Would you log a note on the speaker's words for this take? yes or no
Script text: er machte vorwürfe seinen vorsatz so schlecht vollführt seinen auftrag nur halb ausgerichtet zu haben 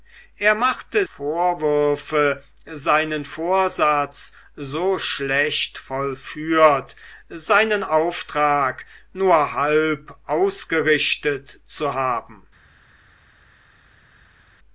no